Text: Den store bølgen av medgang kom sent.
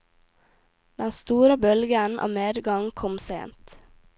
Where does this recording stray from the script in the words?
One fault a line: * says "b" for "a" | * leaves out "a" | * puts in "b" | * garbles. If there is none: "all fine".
all fine